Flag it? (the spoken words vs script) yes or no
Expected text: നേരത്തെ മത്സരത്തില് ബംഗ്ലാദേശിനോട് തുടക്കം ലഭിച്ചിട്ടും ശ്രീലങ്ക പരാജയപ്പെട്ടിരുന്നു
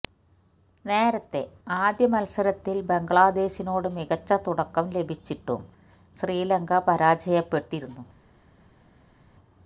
yes